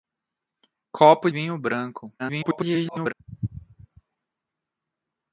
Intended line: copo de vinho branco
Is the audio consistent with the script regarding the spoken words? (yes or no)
no